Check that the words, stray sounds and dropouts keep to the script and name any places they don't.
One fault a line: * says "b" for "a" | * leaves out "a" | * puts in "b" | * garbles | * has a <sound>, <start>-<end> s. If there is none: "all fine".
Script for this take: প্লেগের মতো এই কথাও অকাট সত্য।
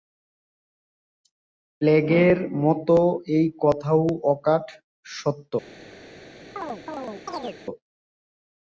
* has a chirp, 6.6-7.6 s